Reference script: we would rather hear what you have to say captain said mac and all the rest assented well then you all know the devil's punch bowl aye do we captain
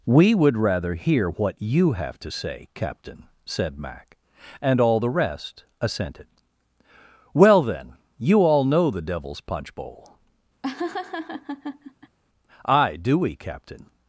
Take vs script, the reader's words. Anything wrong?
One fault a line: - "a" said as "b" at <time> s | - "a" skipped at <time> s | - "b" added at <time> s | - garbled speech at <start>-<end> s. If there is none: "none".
none